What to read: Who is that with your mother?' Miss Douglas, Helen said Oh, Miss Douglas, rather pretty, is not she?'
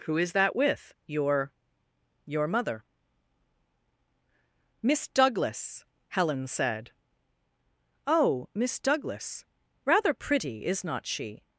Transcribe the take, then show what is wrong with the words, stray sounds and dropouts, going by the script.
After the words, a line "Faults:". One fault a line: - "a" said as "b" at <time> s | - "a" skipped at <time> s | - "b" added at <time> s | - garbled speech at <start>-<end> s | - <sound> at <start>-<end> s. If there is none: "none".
Who is that with your your mother?' Miss Douglas, Helen said Oh, Miss Douglas, rather pretty, is not she?'
Faults:
- "your" added at 2.2 s